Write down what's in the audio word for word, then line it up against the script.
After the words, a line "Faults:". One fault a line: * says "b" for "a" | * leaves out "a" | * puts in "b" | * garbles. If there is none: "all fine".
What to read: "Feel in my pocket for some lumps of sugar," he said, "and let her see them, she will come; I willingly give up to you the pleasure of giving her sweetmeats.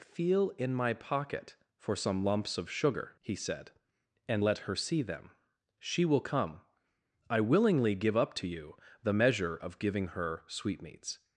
"Feel in my pocket for some lumps of sugar," he said, "and let her see them, she will come; I willingly give up to you the measure of giving her sweetmeats.
Faults:
* says "measure" for "pleasure"